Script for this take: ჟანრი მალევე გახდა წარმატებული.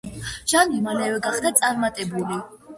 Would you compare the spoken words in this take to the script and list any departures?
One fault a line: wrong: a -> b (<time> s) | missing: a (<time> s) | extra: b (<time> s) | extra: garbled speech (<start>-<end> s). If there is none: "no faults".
no faults